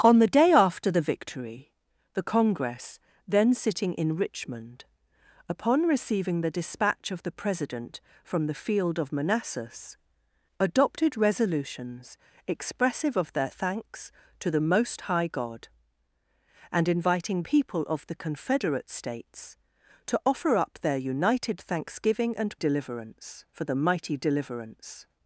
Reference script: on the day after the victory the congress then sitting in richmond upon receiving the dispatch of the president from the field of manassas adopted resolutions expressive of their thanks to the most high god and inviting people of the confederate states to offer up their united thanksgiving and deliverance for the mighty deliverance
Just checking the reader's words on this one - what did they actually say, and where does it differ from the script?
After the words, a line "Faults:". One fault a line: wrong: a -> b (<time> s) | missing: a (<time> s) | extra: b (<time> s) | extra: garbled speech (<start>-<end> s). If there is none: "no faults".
on the day after the victory the congress then sitting in richmond upon receiving the dispatch of the president from the field of manassas adopted resolutions expressive of their thanks to the most high god and inviting people of the confederate states to offer up their united thanksgiving and deliverance for the mighty deliverance
Faults:
no faults